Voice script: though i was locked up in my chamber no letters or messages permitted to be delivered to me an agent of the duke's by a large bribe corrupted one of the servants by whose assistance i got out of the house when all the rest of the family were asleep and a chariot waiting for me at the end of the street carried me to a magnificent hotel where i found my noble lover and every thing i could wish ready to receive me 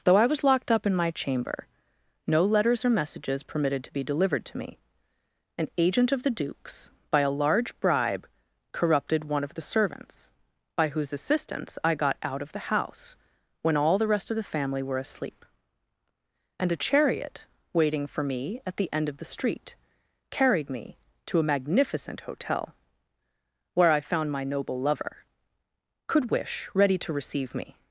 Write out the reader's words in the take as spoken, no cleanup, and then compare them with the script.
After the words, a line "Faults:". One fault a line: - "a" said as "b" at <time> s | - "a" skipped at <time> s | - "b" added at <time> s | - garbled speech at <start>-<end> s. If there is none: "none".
though i was locked up in my chamber no letters or messages permitted to be delivered to me an agent of the duke's by a large bribe corrupted one of the servants by whose assistance i got out of the house when all the rest of the family were asleep and a chariot waiting for me at the end of the street carried me to a magnificent hotel where i found my noble lover could wish ready to receive me
Faults:
- "and every thing i" skipped at 25.2 s